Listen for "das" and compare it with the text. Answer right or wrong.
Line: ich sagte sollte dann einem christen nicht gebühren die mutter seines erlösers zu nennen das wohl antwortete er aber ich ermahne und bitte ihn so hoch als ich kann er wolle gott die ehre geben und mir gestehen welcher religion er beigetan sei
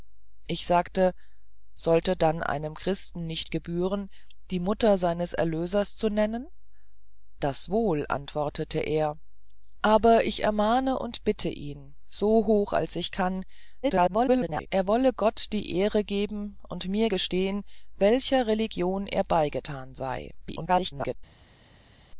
right